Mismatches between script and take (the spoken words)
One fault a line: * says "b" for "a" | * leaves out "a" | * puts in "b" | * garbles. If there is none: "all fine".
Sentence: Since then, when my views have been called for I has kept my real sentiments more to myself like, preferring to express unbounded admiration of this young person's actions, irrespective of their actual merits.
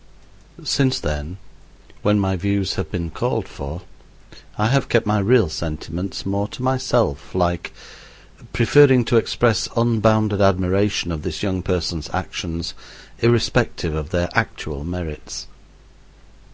* says "have" for "has"